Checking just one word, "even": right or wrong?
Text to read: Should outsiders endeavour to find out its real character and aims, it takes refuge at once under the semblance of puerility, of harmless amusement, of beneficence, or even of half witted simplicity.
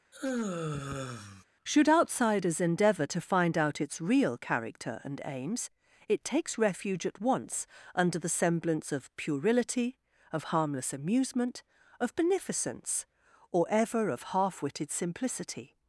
wrong